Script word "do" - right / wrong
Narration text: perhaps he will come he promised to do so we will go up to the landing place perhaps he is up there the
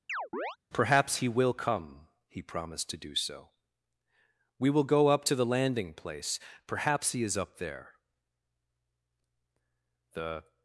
right